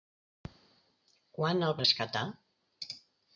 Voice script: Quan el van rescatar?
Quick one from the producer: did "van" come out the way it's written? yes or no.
no